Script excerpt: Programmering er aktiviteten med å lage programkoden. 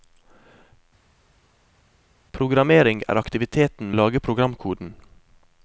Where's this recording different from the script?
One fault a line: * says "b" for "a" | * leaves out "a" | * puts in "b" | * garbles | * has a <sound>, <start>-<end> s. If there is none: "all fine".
* leaves out "med"